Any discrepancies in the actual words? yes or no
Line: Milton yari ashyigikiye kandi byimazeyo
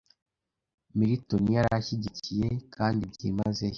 no